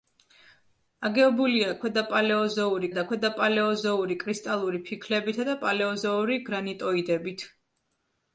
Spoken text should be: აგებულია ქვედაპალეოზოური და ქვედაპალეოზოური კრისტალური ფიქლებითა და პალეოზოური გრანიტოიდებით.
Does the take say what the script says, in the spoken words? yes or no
yes